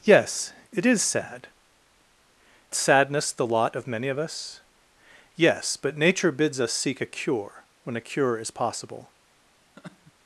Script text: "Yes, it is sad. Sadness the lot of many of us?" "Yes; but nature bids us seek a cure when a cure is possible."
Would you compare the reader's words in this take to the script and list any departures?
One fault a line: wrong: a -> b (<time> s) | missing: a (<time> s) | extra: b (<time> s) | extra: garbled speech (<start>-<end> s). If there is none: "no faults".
no faults